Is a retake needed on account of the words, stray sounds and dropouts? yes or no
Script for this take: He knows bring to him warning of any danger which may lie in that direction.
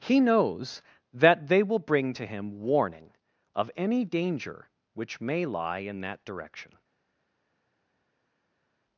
yes